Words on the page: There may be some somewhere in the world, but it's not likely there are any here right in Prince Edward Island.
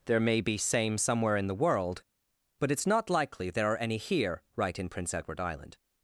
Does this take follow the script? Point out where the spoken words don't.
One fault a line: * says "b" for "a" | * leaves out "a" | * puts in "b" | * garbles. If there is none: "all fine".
* says "same" for "some"